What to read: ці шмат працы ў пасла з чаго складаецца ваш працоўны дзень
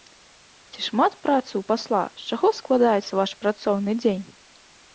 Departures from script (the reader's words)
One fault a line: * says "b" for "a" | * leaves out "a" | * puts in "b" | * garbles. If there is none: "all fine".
all fine